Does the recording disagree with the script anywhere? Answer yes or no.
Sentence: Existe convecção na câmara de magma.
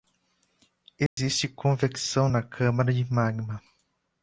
no